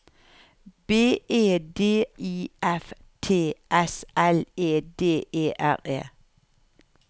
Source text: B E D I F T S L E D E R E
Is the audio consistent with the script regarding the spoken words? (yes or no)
yes